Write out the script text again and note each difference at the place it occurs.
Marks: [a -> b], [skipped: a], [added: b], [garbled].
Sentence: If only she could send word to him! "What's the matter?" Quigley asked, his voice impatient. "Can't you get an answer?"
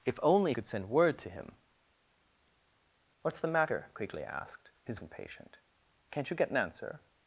If only [skipped: she] could send word to him! "What's the matter?" Quigley asked, his [skipped: voice] impatient. "Can't you get an answer?"